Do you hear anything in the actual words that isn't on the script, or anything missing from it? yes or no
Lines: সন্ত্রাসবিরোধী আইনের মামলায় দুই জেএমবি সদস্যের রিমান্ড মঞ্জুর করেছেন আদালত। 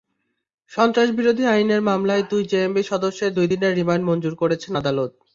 yes